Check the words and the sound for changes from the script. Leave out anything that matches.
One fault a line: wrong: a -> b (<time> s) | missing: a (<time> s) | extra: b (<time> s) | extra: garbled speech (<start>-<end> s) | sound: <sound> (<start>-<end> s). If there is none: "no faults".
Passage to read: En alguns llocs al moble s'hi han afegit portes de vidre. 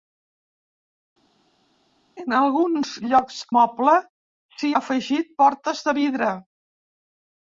missing: al (3.4 s)
missing: han (4.7 s)